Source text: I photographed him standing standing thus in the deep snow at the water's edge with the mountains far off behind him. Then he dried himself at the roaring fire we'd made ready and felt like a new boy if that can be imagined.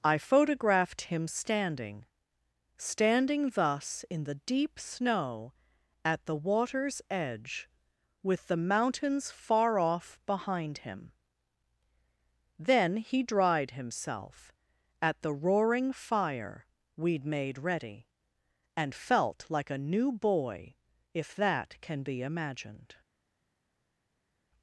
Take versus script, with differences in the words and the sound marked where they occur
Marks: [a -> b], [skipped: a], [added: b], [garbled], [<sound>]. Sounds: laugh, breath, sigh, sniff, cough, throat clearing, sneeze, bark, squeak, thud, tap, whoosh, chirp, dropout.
I photographed him standing standing thus in the deep snow at the water's edge with the mountains far off behind him. Then he dried himself at the roaring fire we'd made ready and felt like a new boy if that can be imagined.